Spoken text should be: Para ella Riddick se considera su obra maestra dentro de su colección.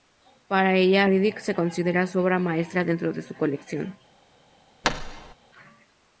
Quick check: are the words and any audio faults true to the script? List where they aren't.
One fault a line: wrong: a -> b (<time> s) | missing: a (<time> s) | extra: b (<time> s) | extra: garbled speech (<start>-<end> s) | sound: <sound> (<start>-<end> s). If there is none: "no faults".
sound: thud (4.8-5.3 s)